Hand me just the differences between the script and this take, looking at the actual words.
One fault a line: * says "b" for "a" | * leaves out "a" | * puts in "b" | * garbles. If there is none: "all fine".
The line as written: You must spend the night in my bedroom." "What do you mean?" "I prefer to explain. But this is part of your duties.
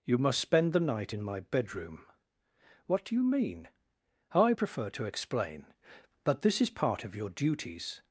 all fine